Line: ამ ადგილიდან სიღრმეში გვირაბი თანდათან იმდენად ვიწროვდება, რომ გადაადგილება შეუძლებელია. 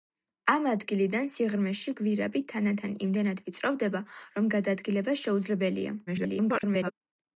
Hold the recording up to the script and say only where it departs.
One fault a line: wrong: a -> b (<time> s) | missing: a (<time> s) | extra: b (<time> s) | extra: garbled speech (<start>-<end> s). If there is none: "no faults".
extra: garbled speech (6.1-6.9 s)